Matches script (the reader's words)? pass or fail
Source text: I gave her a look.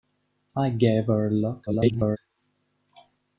fail